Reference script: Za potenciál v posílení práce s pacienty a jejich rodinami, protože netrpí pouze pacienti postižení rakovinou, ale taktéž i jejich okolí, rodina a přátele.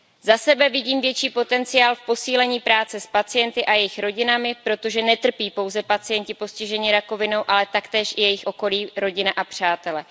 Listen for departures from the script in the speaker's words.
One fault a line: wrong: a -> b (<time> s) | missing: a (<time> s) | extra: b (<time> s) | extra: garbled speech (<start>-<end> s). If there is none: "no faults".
extra: sebe vidím větší (0.4 s)